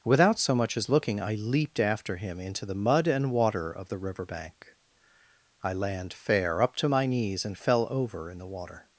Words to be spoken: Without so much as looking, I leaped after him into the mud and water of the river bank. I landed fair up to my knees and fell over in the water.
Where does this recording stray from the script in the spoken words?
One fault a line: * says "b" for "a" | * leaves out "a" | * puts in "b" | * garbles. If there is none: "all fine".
* says "land" for "landed"